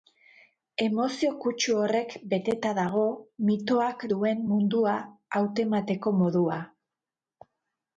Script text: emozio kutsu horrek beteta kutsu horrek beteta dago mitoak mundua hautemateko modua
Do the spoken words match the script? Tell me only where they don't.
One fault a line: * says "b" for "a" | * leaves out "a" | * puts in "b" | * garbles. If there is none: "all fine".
* leaves out "kutsu horrek beteta"
* puts in "duen"